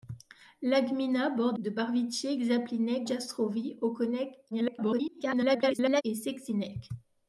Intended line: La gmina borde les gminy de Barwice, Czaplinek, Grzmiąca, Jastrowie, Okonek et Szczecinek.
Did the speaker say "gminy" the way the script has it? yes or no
no